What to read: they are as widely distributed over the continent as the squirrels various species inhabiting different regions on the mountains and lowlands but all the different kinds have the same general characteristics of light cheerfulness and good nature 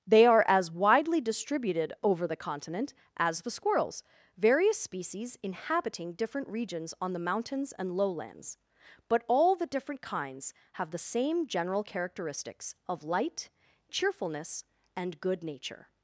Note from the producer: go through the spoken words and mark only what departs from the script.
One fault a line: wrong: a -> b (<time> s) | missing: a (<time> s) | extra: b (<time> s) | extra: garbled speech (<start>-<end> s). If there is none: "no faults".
no faults